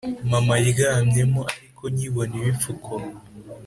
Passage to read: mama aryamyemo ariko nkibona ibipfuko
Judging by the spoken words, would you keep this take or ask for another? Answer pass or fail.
pass